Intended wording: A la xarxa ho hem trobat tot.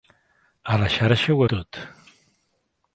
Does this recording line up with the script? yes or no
no